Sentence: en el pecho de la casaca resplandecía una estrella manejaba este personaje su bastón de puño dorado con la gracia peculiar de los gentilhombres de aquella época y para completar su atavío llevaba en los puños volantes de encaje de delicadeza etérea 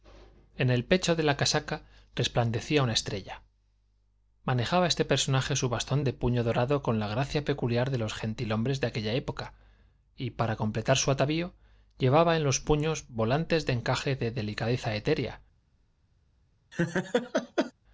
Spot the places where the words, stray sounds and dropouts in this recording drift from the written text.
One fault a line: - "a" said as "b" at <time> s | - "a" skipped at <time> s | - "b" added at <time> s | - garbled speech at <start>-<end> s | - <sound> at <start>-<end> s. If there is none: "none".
- laugh at 16.7-17.7 s